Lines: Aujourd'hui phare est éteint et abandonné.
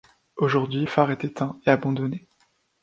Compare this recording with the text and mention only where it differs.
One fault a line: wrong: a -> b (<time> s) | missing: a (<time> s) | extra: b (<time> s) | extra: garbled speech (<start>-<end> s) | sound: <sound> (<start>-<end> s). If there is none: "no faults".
no faults